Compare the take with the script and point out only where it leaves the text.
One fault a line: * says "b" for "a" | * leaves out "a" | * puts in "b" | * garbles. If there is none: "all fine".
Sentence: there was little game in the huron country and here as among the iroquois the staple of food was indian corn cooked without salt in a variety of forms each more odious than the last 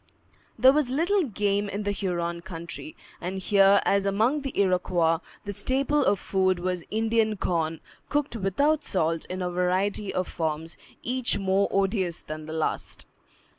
all fine